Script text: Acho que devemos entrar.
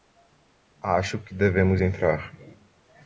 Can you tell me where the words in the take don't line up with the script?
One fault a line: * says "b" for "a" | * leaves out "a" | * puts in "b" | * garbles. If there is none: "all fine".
all fine